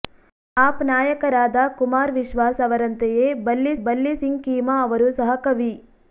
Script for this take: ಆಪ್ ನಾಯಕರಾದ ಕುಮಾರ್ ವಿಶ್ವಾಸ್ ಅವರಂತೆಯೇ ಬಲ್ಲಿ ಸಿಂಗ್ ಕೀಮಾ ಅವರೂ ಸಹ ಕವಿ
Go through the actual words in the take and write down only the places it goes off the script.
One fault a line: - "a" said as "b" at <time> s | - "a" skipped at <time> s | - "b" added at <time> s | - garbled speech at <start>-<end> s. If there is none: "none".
- "ಬಲ್ಲಿ" added at 3.8 s